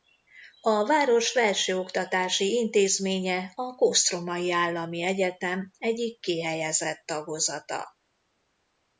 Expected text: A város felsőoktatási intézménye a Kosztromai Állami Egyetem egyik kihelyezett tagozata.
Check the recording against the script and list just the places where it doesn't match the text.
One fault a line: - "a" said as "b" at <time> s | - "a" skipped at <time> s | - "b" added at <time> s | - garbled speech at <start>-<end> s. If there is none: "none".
none